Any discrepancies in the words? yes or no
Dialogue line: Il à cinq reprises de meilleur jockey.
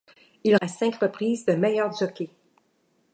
no